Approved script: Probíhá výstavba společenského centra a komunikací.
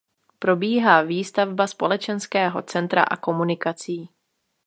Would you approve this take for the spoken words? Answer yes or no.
yes